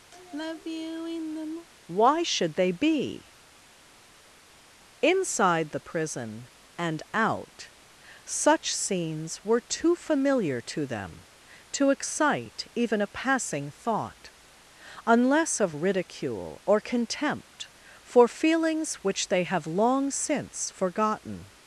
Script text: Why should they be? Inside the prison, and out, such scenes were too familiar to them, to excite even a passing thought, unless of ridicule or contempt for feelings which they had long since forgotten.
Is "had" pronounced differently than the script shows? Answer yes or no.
yes